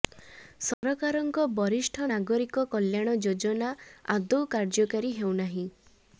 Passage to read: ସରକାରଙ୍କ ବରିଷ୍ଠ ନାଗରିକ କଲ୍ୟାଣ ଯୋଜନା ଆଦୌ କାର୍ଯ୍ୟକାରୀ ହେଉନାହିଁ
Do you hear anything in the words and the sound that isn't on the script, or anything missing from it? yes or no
yes